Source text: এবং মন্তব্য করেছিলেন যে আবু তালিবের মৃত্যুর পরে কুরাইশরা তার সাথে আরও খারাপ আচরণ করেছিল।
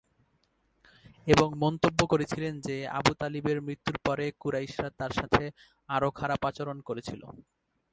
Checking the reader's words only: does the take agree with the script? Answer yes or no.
yes